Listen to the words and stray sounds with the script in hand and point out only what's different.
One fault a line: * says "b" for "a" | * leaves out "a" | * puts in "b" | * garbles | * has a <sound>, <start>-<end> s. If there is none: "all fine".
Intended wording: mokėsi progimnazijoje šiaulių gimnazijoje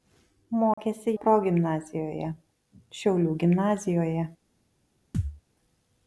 * has a dropout, 0.7-0.8 s
* has a thud, 5.1-5.4 s